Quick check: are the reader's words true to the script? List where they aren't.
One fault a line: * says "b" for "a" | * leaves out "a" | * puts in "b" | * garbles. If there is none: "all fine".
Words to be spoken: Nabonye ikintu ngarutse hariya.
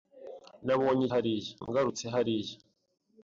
* says "hariya" for "ikintu"